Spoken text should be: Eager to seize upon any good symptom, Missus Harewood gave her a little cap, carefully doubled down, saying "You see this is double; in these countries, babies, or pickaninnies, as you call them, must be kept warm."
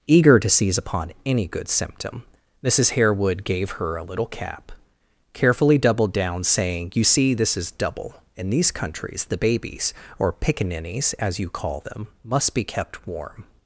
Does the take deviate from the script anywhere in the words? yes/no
yes